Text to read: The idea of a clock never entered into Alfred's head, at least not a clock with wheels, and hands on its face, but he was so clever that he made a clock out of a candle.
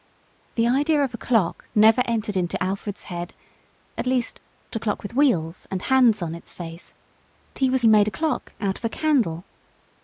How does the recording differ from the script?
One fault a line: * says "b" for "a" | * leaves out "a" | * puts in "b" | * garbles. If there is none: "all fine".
* leaves out "not"
* leaves out "but"
* leaves out "so clever that"